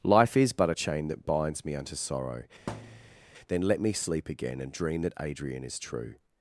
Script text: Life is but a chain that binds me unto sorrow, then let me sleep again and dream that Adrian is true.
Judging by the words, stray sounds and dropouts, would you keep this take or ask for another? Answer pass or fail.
fail